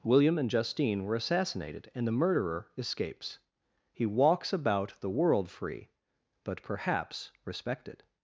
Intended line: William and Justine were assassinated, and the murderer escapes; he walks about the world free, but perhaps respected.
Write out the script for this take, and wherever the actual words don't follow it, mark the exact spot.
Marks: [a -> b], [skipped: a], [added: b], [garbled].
William and Justine were assassinated, and the murderer escapes; he walks about the world free, but perhaps respected.